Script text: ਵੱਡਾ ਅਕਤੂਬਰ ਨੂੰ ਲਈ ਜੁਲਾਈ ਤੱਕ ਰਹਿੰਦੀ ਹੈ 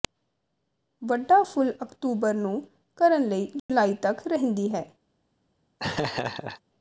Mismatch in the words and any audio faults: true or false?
true